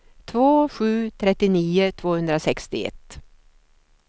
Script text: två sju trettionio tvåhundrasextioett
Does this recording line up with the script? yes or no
yes